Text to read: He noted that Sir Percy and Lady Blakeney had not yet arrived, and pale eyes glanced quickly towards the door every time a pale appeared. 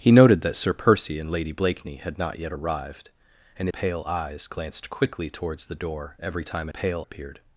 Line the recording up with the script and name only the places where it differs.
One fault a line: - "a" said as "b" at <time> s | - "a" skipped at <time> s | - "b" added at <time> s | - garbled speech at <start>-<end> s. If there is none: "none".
none